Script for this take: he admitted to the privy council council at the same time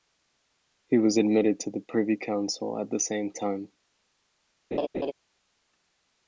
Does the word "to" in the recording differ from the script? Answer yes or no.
no